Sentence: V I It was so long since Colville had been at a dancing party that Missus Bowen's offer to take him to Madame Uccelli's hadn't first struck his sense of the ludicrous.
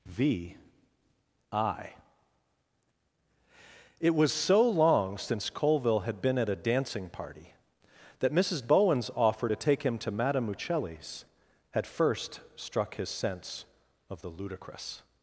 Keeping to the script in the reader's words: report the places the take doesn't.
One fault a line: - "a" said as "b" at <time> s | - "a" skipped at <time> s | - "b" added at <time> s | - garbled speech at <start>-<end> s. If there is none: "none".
- "hadn't" said as "had" at 11.7 s